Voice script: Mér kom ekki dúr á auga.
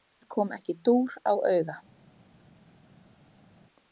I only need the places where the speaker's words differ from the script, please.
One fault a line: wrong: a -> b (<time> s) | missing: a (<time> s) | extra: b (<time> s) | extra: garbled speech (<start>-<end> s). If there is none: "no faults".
no faults